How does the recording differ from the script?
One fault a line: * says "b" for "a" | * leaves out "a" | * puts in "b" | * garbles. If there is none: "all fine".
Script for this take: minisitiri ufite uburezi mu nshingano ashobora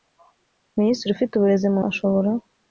* leaves out "nshingano"